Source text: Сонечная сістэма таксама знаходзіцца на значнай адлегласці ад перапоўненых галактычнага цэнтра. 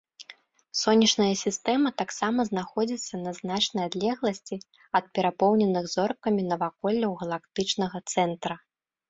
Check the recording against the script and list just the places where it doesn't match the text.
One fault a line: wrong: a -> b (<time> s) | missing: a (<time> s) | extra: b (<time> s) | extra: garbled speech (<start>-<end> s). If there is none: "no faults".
extra: зоркамі наваколляў (6.0 s)